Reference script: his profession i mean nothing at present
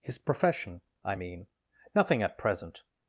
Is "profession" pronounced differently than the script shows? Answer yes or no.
no